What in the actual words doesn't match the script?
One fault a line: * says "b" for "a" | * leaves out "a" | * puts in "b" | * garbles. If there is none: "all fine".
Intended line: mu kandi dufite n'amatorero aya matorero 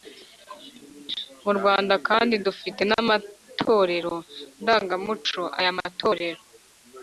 * puts in "rwanda"
* puts in "ndangamuco"